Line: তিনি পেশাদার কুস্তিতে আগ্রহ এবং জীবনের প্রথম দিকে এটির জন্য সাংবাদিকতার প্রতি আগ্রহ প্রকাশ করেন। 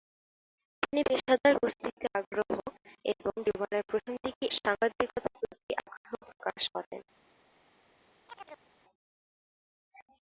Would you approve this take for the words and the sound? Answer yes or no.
no